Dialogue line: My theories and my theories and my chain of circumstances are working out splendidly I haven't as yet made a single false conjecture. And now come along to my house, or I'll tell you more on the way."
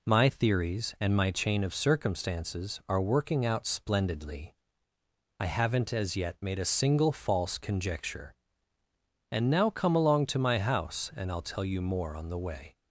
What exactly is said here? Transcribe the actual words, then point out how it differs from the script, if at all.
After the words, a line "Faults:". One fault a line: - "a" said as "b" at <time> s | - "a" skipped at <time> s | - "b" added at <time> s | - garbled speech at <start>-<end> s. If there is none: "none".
My theories and my chain of circumstances are working out splendidly I haven't as yet made a single false conjecture. And now come along to my house, and I'll tell you more on the way."
Faults:
- "theories and my" skipped at 1.3 s
- "or" said as "and" at 11.2 s